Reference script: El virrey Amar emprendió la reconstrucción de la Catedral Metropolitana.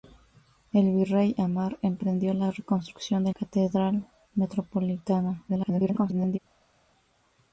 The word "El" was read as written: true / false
true